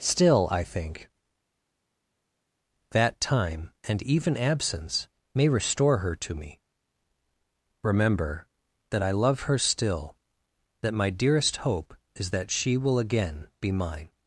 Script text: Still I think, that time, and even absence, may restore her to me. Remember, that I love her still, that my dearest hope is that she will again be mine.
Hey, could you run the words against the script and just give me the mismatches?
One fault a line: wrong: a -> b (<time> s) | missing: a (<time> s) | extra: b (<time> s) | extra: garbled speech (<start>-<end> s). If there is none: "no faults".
no faults